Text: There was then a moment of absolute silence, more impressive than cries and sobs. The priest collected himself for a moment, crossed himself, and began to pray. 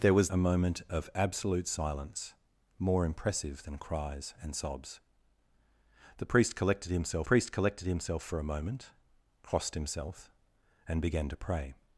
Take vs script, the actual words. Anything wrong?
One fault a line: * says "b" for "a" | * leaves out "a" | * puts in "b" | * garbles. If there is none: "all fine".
* leaves out "then"
* puts in "priest collected himself"